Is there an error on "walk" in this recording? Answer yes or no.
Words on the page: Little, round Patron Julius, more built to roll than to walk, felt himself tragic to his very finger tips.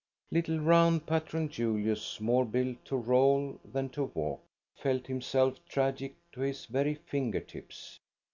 no